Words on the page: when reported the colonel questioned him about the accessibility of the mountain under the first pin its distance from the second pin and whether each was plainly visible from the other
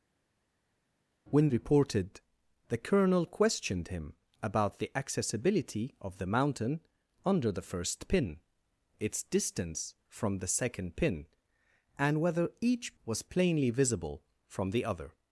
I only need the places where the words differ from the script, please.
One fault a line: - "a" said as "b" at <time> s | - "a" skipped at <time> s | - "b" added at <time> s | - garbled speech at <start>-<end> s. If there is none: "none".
none